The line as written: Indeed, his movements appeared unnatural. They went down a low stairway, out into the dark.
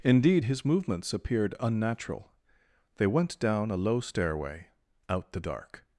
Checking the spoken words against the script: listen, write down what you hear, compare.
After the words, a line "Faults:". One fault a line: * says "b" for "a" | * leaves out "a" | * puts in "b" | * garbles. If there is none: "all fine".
Indeed, his movements appeared unnatural. They went down a low stairway, out the dark.
Faults:
* leaves out "into"